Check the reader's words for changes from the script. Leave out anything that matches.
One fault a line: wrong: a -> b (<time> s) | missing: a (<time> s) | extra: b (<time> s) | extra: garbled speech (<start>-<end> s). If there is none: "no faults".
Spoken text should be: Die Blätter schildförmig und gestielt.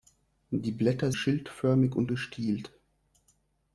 no faults